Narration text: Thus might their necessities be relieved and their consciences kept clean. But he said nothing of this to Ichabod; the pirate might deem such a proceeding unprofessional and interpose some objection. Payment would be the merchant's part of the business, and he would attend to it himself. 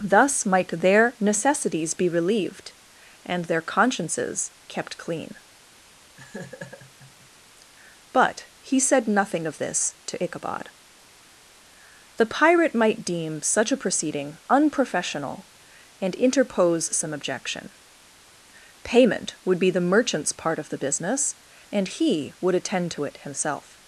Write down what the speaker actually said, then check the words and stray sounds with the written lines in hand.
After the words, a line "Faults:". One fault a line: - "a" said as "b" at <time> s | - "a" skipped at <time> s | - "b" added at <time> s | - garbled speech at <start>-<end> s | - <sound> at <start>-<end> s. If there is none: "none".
Thus might their necessities be relieved and their consciences kept clean. But he said nothing of this to Ichabod; the pirate might deem such a proceeding unprofessional and interpose some objection. Payment would be the merchant's part of the business, and he would attend to it himself.
Faults:
- laugh at 6.2-7.3 s